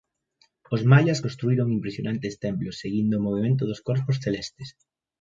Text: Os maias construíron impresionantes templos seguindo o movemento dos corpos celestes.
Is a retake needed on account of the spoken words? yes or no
no